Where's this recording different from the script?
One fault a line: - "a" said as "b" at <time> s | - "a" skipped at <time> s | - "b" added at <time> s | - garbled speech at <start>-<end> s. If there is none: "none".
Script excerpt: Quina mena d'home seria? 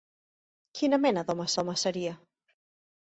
- "d'home" added at 1.6 s